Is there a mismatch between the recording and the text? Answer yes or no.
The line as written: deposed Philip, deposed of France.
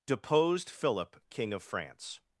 yes